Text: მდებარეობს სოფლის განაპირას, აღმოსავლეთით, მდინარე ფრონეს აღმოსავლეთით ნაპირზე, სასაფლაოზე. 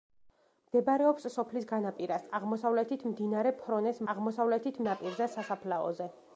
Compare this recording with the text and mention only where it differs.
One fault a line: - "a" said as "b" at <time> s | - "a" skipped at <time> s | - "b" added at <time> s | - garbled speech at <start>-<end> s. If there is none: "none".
none